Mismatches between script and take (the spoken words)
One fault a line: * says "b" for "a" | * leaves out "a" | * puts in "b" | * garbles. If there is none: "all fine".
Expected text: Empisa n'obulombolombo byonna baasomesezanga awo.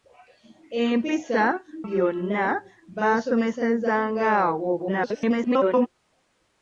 * leaves out "n'obulombolombo"
* garbles